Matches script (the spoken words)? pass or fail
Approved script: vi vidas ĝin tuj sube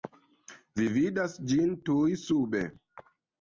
pass